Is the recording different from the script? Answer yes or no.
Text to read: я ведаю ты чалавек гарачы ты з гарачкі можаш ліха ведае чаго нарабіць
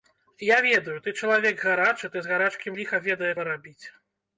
yes